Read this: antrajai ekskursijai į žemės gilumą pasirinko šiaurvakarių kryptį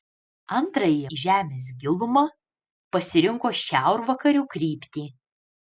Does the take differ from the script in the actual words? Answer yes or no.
yes